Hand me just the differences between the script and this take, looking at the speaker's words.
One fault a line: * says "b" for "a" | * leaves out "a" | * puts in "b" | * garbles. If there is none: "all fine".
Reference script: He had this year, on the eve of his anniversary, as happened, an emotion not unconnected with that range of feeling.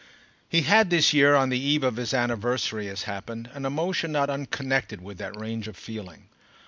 all fine